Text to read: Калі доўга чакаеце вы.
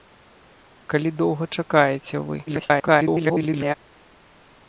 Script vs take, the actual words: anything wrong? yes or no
yes